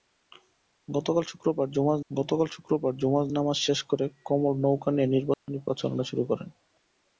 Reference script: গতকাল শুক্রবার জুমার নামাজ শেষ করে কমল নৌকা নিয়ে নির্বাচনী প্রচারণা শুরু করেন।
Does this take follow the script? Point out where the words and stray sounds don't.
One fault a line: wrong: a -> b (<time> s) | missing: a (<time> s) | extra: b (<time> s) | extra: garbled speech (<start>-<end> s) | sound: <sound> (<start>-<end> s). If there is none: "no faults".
extra: গতকাল শুক্রবার জুমার (2.1 s)
sound: dropout (5.3-5.5 s)